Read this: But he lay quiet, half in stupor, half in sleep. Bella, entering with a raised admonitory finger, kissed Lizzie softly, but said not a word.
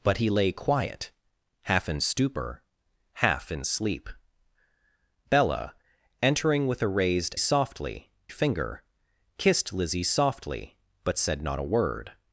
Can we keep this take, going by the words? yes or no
no